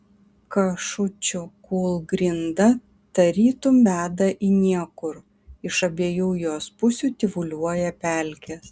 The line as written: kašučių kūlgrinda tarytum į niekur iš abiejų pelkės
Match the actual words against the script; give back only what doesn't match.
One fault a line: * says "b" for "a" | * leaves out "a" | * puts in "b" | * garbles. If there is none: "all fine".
* puts in "veda"
* puts in "jos pusių tyvuliuoja"